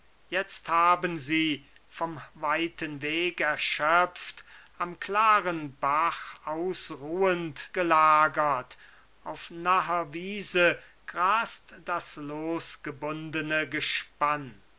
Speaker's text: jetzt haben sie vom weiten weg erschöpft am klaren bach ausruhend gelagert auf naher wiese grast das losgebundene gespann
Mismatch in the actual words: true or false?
false